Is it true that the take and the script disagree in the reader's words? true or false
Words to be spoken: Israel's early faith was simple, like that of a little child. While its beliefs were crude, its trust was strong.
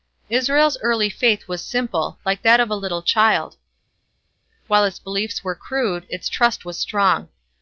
false